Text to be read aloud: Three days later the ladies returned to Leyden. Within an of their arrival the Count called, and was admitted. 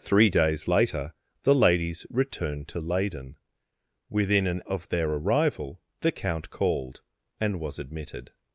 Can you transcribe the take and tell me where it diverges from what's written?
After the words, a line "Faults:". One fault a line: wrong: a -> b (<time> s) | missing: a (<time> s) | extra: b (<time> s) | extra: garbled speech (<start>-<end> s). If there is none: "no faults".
Three days later the ladies returned to Leyden. Within an of their arrival the Count called, and was admitted.
Faults:
no faults